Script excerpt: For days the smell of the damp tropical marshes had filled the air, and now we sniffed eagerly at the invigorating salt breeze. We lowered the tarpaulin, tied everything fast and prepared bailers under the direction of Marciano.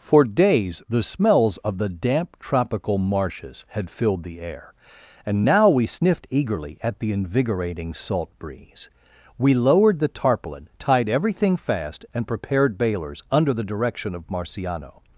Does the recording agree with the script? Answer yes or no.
no